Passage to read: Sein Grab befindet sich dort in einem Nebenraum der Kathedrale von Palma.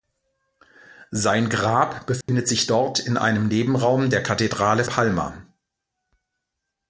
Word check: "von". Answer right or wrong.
wrong